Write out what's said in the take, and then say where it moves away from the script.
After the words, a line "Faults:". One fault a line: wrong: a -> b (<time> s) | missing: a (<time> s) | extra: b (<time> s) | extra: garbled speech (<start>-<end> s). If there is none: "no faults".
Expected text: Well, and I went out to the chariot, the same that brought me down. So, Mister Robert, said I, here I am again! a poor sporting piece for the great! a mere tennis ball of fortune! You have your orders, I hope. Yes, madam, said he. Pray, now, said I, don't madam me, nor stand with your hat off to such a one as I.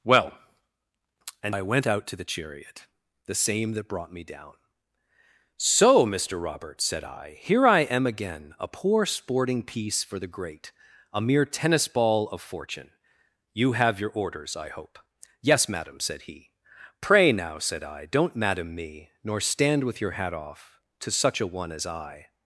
Well, and I went out to the chariot, the same that brought me down. So, Mister Robert, said I, here I am again! a poor sporting piece for the great! a mere tennis ball of fortune! You have your orders, I hope. Yes, madam, said he. Pray, now, said I, don't madam me, nor stand with your hat off to such a one as I.
Faults:
no faults